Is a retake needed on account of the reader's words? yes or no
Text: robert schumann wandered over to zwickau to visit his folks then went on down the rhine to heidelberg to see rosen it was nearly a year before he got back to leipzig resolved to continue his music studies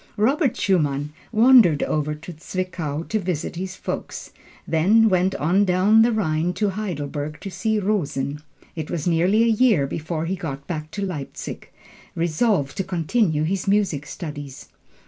no